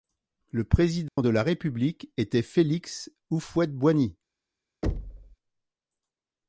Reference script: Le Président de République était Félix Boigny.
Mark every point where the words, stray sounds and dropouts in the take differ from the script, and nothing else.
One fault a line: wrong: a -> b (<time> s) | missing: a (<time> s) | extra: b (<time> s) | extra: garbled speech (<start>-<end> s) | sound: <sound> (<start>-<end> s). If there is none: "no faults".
sound: dropout (1.1-1.2 s)
extra: la (1.3 s)
extra: Houphouët (3.3 s)
sound: thud (4.8-5.4 s)